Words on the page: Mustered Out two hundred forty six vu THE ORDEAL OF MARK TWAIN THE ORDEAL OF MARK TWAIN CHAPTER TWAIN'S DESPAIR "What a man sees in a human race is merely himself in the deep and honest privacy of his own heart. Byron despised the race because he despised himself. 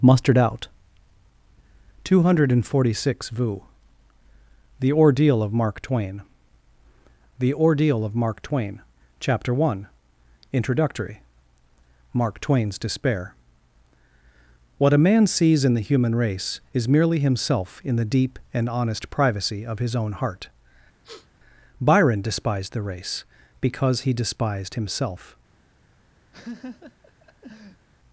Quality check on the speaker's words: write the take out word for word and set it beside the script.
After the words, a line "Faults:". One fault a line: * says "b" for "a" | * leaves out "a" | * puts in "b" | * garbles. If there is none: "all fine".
Mustered Out two hundred forty six vu THE ORDEAL OF MARK TWAIN THE ORDEAL OF MARK TWAIN CHAPTER one INTRODUCTORY: MARK TWAIN'S DESPAIR "What a man sees in the human race is merely himself in the deep and honest privacy of his own heart. Byron despised the race because he despised himself.
Faults:
* puts in "one INTRODUCTORY MARK"
* says "the" for "a"